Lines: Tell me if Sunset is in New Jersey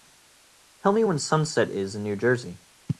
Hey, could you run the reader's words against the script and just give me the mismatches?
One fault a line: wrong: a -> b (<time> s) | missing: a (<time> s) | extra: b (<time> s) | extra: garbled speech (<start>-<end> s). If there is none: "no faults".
wrong: if -> when (1.0 s)